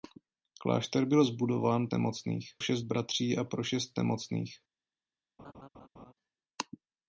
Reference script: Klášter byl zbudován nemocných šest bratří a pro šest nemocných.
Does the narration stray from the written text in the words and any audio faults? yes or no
yes